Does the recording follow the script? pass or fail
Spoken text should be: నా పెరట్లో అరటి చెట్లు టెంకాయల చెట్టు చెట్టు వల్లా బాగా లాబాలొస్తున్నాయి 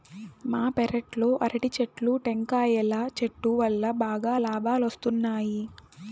fail